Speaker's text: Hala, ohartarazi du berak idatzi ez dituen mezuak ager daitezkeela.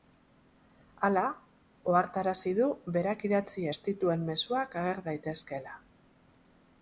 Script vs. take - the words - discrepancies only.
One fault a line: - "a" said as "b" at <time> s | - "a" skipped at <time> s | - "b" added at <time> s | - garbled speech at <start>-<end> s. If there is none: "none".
none